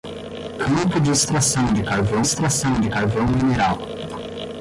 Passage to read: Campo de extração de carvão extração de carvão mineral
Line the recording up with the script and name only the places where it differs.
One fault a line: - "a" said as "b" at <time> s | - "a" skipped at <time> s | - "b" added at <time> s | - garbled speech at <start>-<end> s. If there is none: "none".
none